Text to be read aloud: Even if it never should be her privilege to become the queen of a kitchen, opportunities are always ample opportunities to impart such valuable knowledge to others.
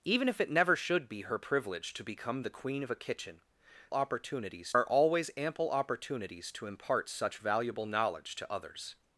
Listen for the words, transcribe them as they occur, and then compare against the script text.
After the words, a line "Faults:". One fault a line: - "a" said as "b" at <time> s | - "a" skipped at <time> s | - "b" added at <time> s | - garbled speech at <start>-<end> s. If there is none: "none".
Even if it never should be her privilege to become the queen of a kitchen, opportunities are always ample opportunities to impart such valuable knowledge to others.
Faults:
none